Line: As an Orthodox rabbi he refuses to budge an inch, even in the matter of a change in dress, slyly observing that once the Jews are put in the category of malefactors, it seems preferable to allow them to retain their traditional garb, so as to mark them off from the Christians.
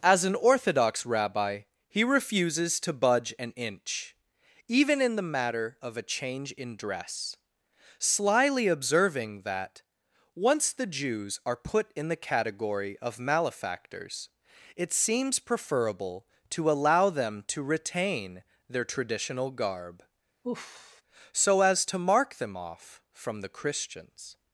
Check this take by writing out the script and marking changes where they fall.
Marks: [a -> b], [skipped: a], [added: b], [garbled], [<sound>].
As an Orthodox rabbi he refuses to budge an inch, even in the matter of a change in dress, slyly observing that once the Jews are put in the category of malefactors, it seems preferable to allow them to retain their traditional garb, [sigh] so as to mark them off from the Christians.